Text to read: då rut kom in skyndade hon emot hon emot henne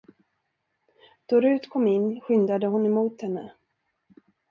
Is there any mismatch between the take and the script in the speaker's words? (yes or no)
yes